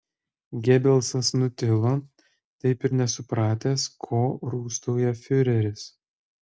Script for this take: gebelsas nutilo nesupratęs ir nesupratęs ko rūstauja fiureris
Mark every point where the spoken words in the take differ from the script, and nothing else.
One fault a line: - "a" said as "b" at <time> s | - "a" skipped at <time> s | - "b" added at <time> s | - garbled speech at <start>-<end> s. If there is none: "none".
- "nesupratęs" said as "taip" at 2.6 s